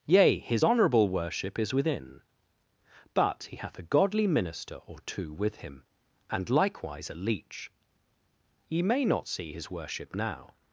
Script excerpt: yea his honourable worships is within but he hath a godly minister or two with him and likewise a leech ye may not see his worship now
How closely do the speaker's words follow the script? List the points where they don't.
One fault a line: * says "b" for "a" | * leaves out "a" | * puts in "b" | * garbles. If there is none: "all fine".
* says "worship" for "worships"